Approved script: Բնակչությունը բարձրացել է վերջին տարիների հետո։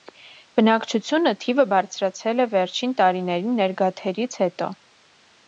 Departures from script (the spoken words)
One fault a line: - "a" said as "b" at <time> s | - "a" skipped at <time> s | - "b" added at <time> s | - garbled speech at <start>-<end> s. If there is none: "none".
- "թիվը" added at 1.4 s
- "ներգաթերից" added at 3.6 s